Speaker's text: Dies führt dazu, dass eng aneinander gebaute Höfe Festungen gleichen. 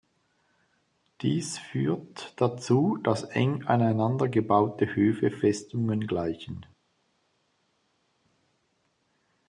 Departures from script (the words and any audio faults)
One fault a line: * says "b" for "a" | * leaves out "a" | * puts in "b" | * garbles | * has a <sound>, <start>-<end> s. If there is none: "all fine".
all fine